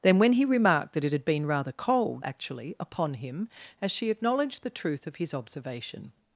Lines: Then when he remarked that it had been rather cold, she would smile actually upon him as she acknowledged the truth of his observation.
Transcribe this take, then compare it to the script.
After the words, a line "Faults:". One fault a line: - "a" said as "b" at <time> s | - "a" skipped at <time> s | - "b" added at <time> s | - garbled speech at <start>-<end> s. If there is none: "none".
Then when he remarked that it had been rather cold, actually upon him as she acknowledged the truth of his observation.
Faults:
- "she would smile" skipped at 2.2 s